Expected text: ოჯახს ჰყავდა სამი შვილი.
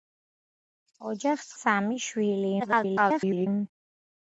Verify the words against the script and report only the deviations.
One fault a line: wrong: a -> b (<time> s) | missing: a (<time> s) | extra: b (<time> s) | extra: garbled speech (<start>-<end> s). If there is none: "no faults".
missing: ჰყავდა (1.5 s)
extra: garbled speech (2.6-3.5 s)